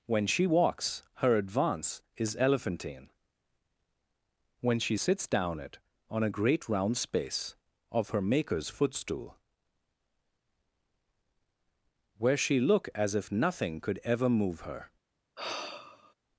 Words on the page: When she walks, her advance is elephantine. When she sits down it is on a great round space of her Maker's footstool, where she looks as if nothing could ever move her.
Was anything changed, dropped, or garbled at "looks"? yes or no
yes